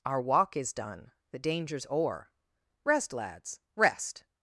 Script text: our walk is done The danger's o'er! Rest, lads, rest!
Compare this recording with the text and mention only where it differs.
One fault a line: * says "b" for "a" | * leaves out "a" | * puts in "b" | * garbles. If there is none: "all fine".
all fine